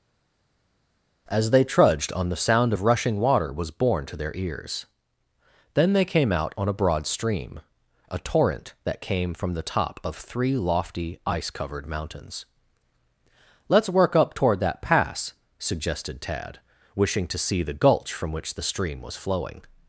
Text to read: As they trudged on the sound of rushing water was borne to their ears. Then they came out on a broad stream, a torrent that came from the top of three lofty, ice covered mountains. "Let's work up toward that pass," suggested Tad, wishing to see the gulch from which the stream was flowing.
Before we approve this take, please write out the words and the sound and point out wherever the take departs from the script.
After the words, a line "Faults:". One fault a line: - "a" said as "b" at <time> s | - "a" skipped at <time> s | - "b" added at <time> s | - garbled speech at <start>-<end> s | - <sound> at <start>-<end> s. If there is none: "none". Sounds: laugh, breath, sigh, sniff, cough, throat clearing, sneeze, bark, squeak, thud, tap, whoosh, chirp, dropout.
As they trudged on the sound of rushing water was borne to their ears. Then they came out on a broad stream, a torrent that came from the top of three lofty, ice covered mountains. "Let's work up toward that pass," suggested Tad, wishing to see the gulch from which the stream was flowing.
Faults:
none